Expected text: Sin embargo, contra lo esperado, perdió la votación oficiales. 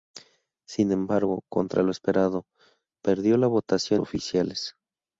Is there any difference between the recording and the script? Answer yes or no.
no